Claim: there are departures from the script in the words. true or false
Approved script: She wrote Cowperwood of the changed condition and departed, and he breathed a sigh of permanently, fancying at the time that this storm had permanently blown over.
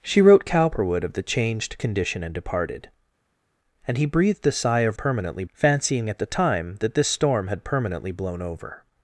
false